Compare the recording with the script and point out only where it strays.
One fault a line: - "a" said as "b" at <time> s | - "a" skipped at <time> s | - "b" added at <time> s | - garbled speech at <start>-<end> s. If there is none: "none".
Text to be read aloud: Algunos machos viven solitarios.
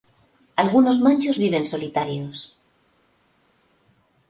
none